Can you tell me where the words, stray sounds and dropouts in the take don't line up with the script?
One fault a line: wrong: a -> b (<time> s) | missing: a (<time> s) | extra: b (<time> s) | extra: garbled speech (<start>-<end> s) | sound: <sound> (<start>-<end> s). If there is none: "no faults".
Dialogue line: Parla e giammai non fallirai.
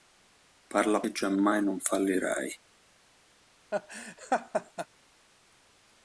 sound: laugh (3.7-4.9 s)